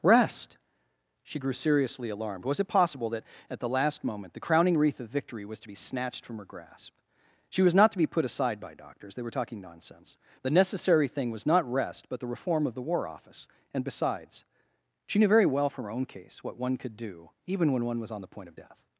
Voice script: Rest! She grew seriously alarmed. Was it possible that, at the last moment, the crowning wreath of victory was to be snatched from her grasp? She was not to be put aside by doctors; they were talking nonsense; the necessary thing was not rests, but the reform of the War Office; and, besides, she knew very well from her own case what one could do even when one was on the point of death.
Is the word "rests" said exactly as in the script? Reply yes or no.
no